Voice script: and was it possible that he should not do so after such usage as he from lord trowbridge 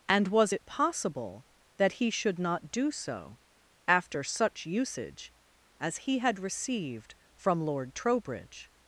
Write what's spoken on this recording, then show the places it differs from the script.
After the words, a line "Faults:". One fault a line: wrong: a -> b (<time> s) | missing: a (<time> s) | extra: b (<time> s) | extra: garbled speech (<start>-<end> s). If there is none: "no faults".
and was it possible that he should not do so after such usage as he had received from lord trowbridge
Faults:
extra: had received (6.2 s)